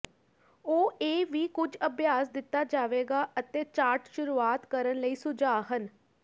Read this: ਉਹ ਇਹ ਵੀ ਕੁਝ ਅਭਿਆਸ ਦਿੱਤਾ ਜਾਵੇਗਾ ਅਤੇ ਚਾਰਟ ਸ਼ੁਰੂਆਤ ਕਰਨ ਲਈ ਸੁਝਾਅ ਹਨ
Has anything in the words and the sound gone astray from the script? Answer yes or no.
no